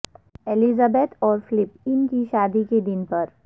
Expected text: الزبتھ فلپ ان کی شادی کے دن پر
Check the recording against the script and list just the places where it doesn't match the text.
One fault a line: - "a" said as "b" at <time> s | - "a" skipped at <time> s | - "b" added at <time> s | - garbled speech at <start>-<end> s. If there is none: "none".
- "اور" added at 1.2 s